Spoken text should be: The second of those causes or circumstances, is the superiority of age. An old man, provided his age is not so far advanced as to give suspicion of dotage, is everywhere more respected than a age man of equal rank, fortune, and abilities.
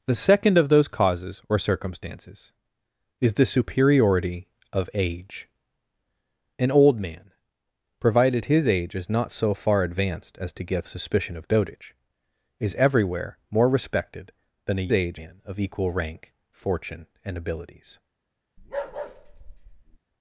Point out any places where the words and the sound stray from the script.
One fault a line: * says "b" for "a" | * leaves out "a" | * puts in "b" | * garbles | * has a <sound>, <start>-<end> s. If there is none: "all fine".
* has a bark, 18.6-20.0 s